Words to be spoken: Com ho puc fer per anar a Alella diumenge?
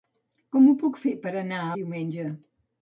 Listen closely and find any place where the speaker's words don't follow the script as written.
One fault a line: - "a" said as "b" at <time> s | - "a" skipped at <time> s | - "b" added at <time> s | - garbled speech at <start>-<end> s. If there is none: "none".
- "Alella" skipped at 1.7 s